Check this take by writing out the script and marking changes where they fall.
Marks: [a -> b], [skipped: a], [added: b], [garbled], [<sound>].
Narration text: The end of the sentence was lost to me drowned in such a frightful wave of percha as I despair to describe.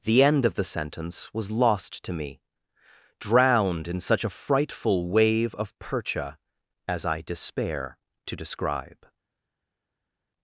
The end of the sentence was lost to me drowned in such a frightful wave of percha as I despair to describe.